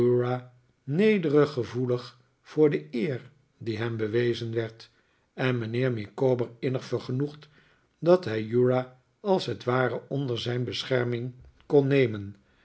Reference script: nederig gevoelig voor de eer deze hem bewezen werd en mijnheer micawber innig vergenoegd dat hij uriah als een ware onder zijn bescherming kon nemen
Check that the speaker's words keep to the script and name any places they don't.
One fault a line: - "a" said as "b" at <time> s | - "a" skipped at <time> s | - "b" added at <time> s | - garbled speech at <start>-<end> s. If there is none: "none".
- "deze" said as "die" at 3.6 s
- "een" said as "het" at 9.4 s